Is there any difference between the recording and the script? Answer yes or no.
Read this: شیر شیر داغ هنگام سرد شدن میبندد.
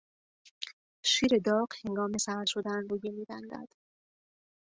yes